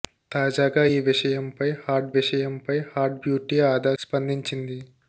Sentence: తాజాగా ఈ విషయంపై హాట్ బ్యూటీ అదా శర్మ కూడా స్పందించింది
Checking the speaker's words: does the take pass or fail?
fail